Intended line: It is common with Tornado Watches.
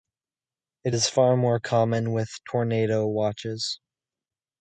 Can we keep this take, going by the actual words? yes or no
no